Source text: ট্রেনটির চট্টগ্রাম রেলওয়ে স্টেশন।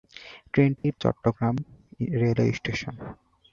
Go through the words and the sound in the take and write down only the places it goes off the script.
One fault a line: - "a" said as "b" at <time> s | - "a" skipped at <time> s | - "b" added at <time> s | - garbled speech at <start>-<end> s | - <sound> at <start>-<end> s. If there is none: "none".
- dropout at 0.8-0.8 s